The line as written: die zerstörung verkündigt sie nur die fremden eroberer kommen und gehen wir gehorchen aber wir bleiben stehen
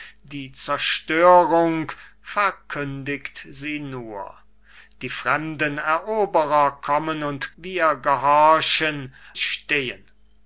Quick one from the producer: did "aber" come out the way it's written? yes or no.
no